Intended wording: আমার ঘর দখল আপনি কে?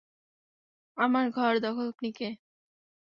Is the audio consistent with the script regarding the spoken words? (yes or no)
yes